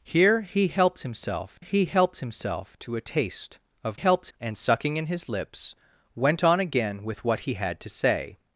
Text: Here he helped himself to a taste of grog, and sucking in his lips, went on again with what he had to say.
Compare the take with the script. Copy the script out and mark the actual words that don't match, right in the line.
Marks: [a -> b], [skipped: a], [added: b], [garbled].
Here he helped himself [added: he helped himself] to a taste of [grog, -> helped] and sucking in his lips, went on again with what he had to say.